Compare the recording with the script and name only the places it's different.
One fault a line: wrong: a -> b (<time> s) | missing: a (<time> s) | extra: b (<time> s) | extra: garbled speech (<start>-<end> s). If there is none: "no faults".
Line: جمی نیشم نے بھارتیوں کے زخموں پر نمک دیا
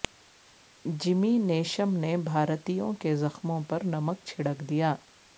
extra: چھڑک (4.3 s)